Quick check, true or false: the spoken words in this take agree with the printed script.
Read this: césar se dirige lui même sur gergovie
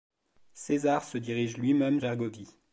false